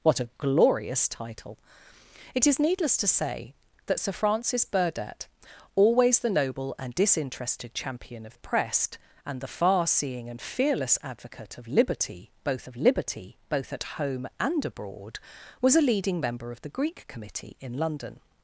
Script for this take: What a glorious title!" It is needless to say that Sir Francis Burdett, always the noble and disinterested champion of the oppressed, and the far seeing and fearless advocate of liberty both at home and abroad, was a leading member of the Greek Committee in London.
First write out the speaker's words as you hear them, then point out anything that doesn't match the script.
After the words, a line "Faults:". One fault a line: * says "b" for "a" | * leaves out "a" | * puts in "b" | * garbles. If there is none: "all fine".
What a glorious title!" It is needless to say that Sir Francis Burdett, always the noble and disinterested champion of oppressed, and the far seeing and fearless advocate of liberty both of liberty both at home and abroad, was a leading member of the Greek Committee in London.
Faults:
* leaves out "the"
* puts in "of liberty both"